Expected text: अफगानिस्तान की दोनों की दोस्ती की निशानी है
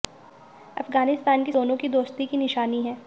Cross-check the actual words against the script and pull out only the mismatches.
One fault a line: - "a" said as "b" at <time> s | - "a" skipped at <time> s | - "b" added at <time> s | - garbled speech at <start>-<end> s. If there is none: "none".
none